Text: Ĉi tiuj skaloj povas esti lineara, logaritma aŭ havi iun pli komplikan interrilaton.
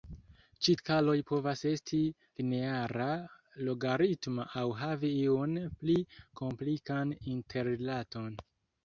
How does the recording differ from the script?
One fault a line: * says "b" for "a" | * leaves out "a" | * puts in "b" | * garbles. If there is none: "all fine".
* leaves out "tiuj"